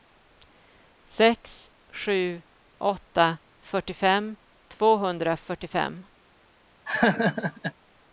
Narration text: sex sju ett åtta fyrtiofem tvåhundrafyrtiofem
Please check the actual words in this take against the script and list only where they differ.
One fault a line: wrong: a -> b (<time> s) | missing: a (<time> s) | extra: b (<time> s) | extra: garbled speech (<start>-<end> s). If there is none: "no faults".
missing: ett (2.4 s)